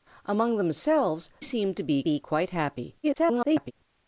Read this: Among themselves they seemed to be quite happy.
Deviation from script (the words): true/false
true